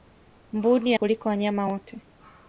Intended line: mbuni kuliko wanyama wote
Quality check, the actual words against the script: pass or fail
pass